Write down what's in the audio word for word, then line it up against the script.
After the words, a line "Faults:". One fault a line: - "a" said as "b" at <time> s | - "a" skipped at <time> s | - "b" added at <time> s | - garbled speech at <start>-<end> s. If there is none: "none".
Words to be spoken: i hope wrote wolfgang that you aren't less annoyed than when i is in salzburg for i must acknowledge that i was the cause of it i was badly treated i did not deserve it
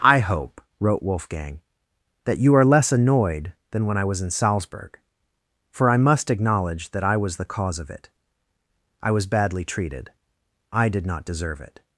i hope wrote wolfgang that you are less annoyed than when i was in salzburg for i must acknowledge that i was the cause of it i was badly treated i did not deserve it
Faults:
- "aren't" said as "are" at 2.5 s
- "is" said as "was" at 4.0 s